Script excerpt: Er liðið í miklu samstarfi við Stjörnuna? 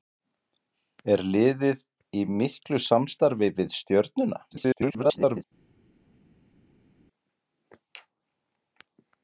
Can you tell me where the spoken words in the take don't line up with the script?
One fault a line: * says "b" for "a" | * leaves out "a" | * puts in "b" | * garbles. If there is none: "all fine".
* garbles